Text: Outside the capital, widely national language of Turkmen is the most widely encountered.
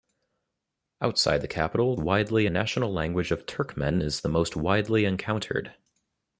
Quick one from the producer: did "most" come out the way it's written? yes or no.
yes